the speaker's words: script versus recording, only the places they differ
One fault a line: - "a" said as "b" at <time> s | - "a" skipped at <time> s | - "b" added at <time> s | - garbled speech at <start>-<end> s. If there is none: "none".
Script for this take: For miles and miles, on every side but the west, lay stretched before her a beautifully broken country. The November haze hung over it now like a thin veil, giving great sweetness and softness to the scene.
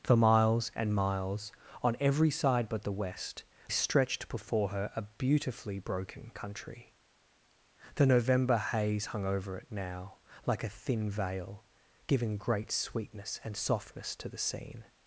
- "lay" skipped at 3.4 s